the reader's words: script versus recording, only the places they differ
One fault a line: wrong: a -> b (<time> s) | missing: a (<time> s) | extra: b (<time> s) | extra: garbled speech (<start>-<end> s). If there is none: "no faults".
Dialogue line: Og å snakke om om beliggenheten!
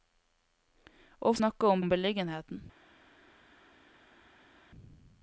no faults